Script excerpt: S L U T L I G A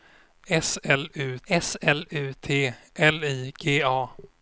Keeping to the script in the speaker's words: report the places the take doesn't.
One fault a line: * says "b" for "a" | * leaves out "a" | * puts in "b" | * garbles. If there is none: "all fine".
* puts in "s L U"